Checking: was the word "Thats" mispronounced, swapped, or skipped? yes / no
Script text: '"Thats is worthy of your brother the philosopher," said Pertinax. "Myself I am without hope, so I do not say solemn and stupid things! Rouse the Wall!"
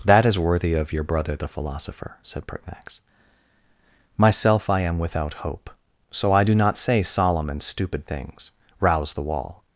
yes